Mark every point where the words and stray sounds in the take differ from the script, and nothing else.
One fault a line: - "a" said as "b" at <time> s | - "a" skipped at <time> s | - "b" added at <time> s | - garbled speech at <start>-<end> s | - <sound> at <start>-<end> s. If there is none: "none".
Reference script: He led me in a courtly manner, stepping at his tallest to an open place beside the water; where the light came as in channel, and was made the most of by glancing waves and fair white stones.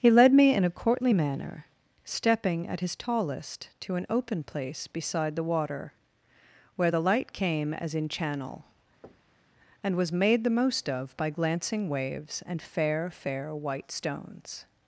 - thud at 9.0-9.5 s
- "fair" added at 13.1 s